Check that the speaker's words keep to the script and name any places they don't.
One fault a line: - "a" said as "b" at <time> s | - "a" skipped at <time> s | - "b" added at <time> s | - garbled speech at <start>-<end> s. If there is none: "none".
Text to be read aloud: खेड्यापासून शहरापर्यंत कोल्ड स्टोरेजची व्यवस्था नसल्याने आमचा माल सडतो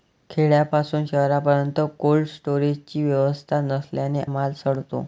- "आमचा" skipped at 4.2 s